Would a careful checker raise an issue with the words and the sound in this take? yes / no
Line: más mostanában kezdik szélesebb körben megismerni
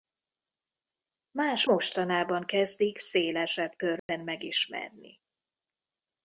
yes